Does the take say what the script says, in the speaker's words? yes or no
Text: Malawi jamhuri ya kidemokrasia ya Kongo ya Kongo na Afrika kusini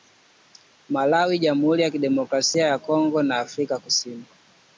no